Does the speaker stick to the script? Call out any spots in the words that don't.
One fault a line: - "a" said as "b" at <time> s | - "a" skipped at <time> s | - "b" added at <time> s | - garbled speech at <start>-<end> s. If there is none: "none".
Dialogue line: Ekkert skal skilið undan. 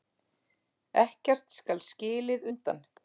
none